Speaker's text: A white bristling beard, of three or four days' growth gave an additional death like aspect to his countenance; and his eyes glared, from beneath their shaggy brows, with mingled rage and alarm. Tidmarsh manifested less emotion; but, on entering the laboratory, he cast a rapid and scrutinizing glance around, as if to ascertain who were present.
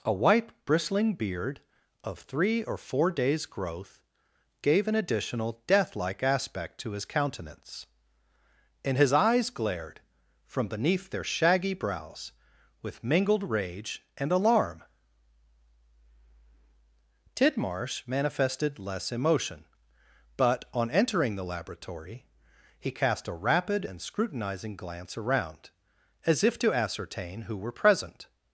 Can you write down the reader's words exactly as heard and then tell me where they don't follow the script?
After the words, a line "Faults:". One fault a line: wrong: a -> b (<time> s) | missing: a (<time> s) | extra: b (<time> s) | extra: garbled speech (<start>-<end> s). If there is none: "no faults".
A white bristling beard, of three or four days' growth gave an additional death like aspect to his countenance; and his eyes glared, from beneath their shaggy brows, with mingled rage and alarm. Tidmarsh manifested less emotion; but, on entering the laboratory, he cast a rapid and scrutinizing glance around, as if to ascertain who were present.
Faults:
no faults